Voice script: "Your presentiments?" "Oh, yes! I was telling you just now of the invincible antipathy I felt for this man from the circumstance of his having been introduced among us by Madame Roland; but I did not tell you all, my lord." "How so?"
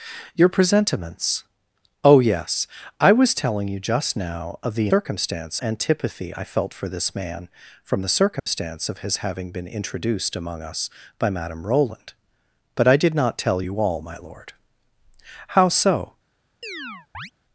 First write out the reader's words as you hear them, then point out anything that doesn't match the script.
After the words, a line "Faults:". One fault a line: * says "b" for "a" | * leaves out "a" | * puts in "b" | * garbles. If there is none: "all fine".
"Your presentiments?" "Oh, yes! I was telling you just now of the circumstance antipathy I felt for this man from the circumstance of his having been introduced among us by Madame Roland; but I did not tell you all, my lord." "How so?"
Faults:
* says "circumstance" for "invincible"